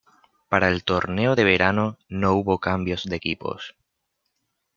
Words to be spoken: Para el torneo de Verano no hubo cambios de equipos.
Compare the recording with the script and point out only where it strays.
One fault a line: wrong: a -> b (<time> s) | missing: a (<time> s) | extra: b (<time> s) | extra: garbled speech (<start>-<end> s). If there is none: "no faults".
no faults